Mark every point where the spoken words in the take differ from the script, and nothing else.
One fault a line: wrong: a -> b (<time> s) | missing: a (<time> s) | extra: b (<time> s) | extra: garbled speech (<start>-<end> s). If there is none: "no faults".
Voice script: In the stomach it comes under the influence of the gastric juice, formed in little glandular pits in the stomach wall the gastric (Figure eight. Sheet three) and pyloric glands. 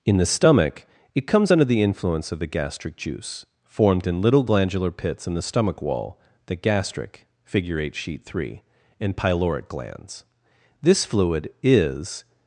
extra: This fluid is (10.8 s)